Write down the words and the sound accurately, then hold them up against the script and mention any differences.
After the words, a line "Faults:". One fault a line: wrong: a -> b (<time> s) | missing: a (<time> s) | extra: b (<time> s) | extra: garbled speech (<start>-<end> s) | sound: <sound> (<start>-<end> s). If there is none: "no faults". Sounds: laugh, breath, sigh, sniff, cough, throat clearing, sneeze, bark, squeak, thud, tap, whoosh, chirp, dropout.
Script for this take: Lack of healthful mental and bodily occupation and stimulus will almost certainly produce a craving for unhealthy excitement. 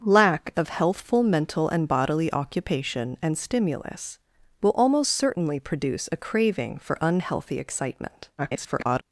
Lack of healthful mental and bodily occupation and stimulus will almost certainly produce a craving for unhealthy excitement. [garbled]
Faults:
extra: garbled speech (8.4-9.0 s)